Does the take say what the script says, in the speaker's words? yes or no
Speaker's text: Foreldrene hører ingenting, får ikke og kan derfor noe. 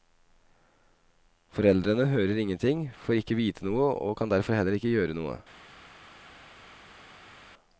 no